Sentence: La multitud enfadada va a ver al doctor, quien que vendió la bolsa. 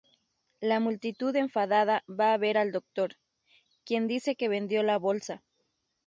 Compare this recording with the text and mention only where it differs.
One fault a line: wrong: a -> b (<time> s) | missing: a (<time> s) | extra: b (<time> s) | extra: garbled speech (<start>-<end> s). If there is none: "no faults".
extra: dice (4.1 s)